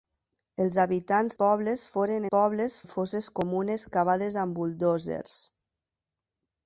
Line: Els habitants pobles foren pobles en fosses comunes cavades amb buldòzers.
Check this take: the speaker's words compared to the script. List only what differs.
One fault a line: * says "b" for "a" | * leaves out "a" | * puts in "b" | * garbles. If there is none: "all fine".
all fine